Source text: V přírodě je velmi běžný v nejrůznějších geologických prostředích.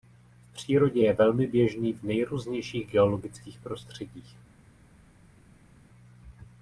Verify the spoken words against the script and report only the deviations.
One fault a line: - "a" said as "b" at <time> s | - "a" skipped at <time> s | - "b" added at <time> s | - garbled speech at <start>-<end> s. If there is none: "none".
none